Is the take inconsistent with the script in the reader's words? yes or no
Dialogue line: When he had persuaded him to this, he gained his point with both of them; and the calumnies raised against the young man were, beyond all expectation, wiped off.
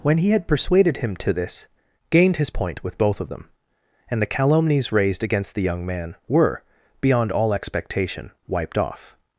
yes